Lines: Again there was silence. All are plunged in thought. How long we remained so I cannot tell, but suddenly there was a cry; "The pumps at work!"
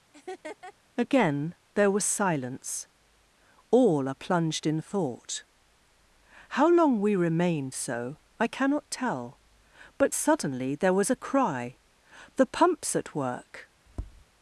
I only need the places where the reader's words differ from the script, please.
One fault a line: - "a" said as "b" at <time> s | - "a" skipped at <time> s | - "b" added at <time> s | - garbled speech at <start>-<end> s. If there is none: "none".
none